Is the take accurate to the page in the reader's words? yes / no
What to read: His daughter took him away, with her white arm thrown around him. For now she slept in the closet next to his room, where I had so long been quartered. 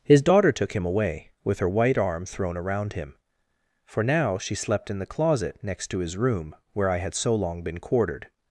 yes